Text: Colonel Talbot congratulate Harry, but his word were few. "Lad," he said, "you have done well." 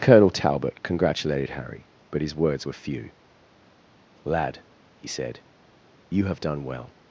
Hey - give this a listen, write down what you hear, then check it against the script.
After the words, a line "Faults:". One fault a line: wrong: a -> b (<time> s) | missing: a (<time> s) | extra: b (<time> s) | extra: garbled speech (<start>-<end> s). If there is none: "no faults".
Colonel Talbot congratulated Harry, but his words were few. "Lad," he said, "you have done well."
Faults:
wrong: congratulate -> congratulated (0.8 s)
wrong: word -> words (2.4 s)